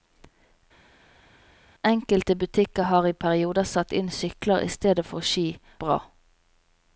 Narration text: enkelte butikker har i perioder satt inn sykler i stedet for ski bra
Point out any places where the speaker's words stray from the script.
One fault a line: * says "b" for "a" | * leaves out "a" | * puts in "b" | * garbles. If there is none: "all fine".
all fine